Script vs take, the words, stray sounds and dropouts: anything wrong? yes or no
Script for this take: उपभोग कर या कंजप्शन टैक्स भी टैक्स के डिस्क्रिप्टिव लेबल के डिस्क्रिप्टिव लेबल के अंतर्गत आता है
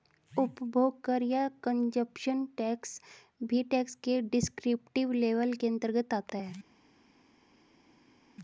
yes